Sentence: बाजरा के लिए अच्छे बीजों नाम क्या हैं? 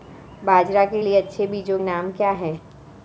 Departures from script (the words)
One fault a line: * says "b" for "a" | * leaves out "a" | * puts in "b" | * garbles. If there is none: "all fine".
all fine